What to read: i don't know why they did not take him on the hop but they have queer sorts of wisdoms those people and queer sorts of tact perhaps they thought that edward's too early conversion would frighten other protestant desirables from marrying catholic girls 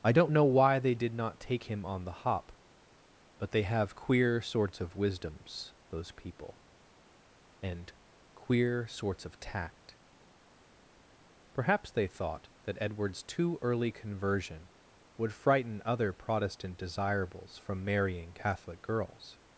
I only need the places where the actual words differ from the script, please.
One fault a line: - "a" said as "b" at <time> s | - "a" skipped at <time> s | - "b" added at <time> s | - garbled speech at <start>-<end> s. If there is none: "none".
none